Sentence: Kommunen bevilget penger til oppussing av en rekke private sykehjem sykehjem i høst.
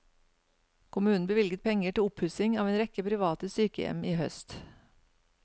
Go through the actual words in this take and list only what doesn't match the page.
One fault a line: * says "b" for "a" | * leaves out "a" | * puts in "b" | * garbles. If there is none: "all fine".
* leaves out "sykehjem"